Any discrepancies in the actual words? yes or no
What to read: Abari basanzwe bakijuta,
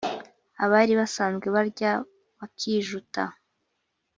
yes